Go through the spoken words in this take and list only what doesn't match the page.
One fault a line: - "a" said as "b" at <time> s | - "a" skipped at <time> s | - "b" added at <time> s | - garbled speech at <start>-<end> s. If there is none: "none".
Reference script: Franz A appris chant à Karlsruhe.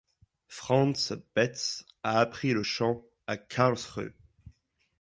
- "Betz" added at 1.4 s
- "le" added at 2.5 s